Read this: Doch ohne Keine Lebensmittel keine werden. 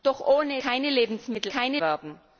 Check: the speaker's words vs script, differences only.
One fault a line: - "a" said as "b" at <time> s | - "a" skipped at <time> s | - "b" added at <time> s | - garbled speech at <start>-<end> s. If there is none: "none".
none